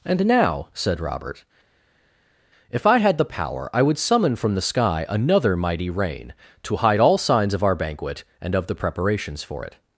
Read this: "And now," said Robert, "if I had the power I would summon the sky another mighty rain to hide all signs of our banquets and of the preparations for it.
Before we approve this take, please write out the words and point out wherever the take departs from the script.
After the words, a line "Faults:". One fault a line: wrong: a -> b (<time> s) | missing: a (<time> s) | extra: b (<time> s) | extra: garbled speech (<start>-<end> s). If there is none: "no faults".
"And now," said Robert, "if I had the power I would summon from the sky another mighty rain to hide all signs of our banquet and of the preparations for it.
Faults:
extra: from (4.3 s)
wrong: banquets -> banquet (7.7 s)